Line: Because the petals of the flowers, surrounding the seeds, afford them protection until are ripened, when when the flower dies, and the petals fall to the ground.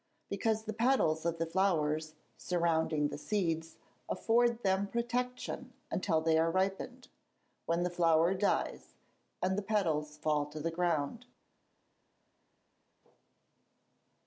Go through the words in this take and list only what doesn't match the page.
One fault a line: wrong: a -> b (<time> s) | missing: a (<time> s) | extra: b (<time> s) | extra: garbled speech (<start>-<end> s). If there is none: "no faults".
extra: they (6.2 s)
missing: when (7.8 s)